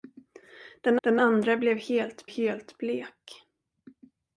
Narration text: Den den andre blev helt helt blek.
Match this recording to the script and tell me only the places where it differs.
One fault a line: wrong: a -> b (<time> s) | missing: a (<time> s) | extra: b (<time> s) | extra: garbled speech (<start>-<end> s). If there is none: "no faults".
no faults